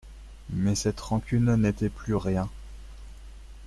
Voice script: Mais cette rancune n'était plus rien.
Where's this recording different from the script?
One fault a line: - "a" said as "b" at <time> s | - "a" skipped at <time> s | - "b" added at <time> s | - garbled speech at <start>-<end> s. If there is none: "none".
none